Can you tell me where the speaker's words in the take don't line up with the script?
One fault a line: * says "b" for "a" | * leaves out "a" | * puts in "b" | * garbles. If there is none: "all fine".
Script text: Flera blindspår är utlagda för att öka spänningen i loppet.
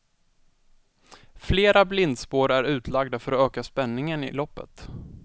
all fine